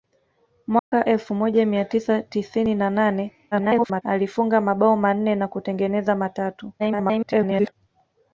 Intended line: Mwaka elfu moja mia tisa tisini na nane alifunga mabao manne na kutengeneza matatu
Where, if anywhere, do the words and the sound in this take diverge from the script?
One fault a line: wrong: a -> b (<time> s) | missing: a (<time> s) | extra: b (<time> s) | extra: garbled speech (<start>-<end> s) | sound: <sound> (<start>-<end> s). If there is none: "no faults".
sound: dropout (0.8-0.9 s)
extra: garbled speech (3.5-4.0 s)
extra: garbled speech (6.8-7.7 s)